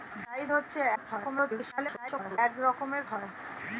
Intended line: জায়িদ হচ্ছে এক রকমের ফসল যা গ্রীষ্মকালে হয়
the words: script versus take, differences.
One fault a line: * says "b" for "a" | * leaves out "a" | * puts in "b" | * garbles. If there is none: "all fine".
* garbles
* leaves out "ফসল যা গ্রীষ্মকালে"